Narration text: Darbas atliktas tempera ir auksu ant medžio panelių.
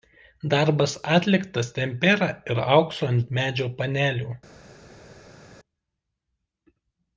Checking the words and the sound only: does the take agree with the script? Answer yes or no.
yes